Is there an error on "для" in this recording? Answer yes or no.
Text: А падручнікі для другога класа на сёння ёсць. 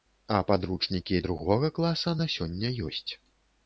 yes